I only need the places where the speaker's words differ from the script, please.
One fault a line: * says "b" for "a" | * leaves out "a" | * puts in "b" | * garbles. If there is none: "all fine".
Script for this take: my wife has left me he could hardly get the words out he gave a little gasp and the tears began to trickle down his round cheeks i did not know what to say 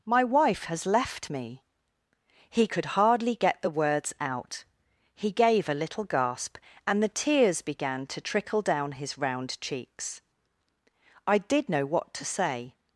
* leaves out "not"